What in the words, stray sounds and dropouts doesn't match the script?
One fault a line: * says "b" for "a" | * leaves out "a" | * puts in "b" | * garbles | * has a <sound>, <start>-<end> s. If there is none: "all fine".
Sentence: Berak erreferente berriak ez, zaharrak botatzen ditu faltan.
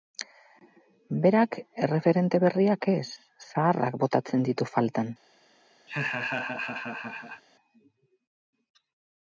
* has a laugh, 5.9-7.4 s